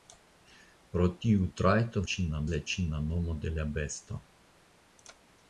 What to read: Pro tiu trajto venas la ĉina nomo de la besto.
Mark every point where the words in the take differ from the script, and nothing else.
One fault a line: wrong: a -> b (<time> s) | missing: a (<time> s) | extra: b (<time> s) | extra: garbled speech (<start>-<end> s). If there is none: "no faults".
wrong: venas -> ĉina (2.1 s)